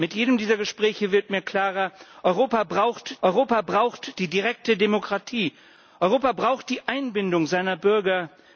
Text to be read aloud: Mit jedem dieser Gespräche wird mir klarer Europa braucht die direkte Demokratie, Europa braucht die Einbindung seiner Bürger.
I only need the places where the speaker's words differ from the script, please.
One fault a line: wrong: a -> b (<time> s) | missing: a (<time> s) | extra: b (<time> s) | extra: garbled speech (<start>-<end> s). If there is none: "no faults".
extra: Europa braucht (3.2 s)